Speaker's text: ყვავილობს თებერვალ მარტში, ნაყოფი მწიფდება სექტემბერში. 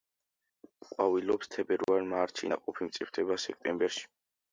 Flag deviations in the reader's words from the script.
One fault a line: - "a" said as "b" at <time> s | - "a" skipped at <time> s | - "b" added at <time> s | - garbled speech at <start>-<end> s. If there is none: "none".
none